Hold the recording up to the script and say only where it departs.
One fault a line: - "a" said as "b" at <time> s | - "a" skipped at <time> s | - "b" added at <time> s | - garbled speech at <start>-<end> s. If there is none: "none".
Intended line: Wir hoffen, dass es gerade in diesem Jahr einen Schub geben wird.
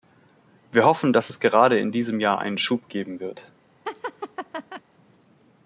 none